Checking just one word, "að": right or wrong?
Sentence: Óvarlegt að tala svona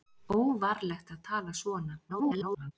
right